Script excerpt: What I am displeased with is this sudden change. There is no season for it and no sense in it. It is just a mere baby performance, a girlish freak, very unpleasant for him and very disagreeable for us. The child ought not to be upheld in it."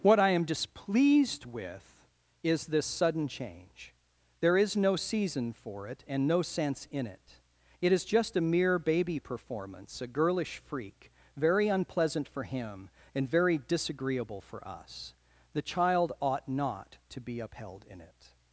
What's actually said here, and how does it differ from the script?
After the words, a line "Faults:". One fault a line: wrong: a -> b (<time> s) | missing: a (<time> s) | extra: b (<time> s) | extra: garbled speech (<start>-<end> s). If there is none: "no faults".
What I am displeased with is this sudden change. There is no season for it and no sense in it. It is just a mere baby performance, a girlish freak, very unpleasant for him and very disagreeable for us. The child ought not to be upheld in it."
Faults:
no faults